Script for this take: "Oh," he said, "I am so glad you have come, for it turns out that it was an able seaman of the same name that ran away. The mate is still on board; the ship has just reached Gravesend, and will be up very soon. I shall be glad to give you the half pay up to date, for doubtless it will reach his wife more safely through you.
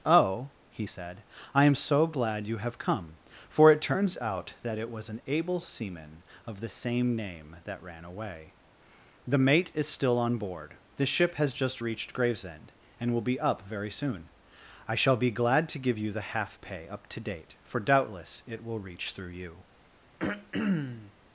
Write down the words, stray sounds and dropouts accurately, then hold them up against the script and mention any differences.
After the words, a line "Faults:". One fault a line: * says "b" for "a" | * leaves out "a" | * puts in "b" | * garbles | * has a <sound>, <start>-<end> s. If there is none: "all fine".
"Oh," he said, "I am so glad you have come, for it turns out that it was an able seaman of the same name that ran away. The mate is still on board; the ship has just reached Gravesend, and will be up very soon. I shall be glad to give you the half pay up to date, for doubtless it will reach through you.
Faults:
* leaves out "his wife more safely"
* has a throat clearing, 20.2-21.1 s